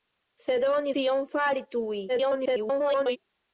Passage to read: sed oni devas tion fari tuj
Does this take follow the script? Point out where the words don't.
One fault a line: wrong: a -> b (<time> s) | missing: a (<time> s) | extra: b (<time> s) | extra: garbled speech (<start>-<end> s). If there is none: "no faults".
missing: devas (0.9 s)
extra: garbled speech (2.1-3.2 s)